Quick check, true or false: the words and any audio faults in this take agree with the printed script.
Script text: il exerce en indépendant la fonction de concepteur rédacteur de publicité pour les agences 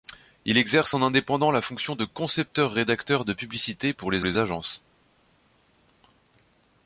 false